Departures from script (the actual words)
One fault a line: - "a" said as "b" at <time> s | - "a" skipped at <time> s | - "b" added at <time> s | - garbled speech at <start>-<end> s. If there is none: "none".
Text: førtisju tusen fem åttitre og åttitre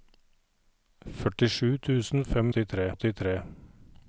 none